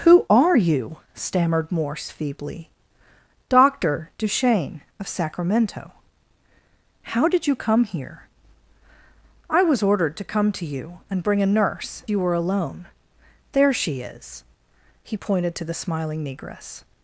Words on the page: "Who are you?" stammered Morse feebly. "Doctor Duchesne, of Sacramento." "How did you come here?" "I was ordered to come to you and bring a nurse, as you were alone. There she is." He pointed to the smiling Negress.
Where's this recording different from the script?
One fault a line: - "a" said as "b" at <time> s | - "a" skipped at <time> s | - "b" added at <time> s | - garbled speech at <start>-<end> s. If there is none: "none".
- "as" skipped at 12.0 s